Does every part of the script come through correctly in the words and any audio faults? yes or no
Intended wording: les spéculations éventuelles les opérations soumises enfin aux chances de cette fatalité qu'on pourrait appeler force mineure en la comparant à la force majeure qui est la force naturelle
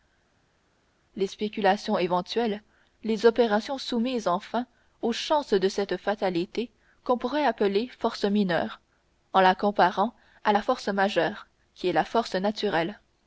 yes